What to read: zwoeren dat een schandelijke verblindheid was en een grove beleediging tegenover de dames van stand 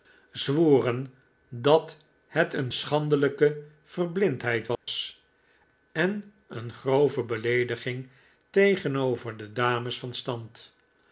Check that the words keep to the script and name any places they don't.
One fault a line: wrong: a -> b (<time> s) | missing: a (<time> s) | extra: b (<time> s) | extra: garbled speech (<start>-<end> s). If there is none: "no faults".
extra: het (2.3 s)